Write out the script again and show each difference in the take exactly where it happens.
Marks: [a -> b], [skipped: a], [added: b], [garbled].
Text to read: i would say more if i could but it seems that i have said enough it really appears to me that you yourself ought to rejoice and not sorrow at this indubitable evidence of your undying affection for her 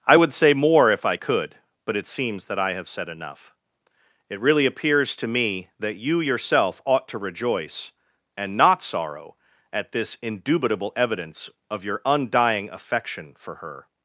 i would say more if i could but it seems that i have said enough it really appears to me that you yourself ought to rejoice and not sorrow at this indubitable evidence of your undying affection for her